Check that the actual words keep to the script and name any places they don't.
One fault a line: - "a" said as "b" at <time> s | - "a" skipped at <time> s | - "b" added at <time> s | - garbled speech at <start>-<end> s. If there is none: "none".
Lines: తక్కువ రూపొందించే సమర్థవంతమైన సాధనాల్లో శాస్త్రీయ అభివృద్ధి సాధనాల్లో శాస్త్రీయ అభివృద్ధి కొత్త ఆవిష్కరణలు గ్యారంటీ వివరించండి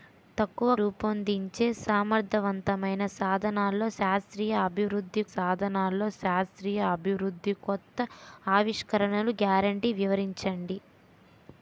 none